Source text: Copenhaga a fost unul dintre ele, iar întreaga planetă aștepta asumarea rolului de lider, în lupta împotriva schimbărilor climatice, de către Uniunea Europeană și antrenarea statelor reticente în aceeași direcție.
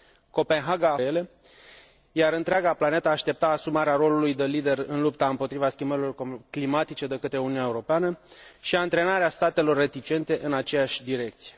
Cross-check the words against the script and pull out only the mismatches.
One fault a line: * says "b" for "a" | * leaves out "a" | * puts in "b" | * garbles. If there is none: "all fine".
* leaves out "fost unul dintre"